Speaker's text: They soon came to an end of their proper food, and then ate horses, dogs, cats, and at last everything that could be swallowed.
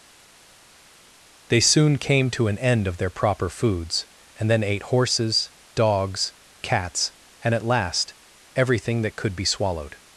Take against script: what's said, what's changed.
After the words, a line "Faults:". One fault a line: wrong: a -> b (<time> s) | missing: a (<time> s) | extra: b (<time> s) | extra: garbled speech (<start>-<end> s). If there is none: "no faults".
They soon came to an end of their proper foods, and then ate horses, dogs, cats, and at last everything that could be swallowed.
Faults:
wrong: food -> foods (3.5 s)